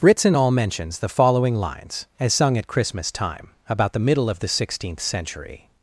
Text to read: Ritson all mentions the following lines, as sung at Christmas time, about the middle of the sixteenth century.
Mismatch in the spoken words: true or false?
false